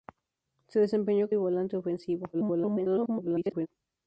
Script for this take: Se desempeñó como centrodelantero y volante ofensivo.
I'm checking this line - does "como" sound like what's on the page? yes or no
no